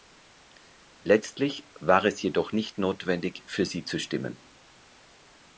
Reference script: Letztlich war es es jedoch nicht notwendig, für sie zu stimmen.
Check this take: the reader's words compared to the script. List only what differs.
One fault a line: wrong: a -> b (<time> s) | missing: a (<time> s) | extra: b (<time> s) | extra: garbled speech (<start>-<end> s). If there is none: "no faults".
missing: es (2.2 s)